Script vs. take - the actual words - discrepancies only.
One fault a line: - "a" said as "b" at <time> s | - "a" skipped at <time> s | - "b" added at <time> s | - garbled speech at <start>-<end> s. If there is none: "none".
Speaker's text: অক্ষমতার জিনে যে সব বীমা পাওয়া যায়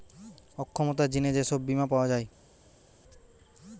none